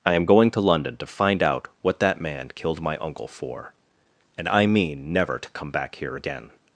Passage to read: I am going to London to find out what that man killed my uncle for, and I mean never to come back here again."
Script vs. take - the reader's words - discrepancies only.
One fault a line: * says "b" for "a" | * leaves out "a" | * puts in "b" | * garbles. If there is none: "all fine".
all fine